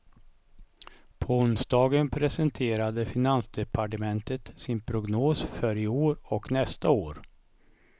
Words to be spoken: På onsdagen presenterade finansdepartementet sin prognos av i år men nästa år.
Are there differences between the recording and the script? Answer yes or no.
yes